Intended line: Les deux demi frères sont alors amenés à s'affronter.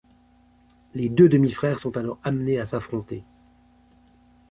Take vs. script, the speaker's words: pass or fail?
pass